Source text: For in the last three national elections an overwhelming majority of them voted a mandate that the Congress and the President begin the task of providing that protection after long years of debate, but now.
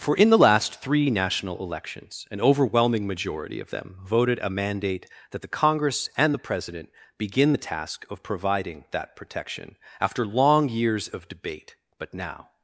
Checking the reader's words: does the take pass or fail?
pass